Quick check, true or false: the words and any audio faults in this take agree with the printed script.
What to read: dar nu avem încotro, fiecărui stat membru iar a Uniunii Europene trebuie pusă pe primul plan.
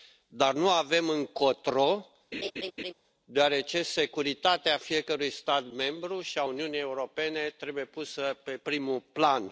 false